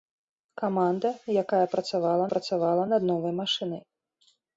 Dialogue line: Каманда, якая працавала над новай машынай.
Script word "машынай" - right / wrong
right